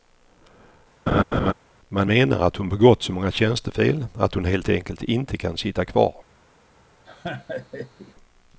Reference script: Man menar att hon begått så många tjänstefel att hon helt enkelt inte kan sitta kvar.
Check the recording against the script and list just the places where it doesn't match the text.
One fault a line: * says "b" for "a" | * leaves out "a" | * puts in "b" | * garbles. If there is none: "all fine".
all fine